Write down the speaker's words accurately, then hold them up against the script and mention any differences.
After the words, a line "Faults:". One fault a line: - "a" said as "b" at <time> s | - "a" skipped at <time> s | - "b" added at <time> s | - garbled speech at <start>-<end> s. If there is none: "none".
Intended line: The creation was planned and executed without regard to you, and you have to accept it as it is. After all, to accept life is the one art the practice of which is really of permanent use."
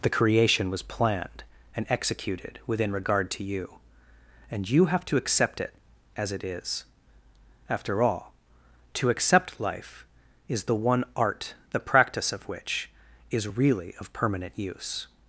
The creation was planned and executed within regard to you, and you have to accept it as it is. After all, to accept life is the one art the practice of which is really of permanent use."
Faults:
- "without" said as "within" at 2.6 s